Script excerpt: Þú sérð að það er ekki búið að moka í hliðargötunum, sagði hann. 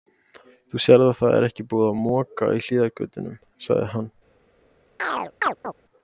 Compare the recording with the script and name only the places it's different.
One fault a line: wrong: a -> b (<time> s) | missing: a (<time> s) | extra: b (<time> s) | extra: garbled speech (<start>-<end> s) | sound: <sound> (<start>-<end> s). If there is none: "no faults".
sound: chirp (5.0-5.7 s)